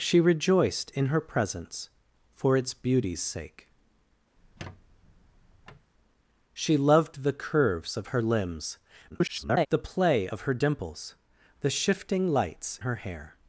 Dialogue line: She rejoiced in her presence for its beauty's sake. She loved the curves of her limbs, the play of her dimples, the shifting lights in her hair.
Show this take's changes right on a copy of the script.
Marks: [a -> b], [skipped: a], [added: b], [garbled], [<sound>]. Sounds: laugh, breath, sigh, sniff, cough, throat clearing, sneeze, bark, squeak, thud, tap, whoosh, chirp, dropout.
She rejoiced in her presence for its beauty's sake. [squeak] She loved the curves of her limbs, [garbled] the play of her dimples, the shifting lights [skipped: in] her hair.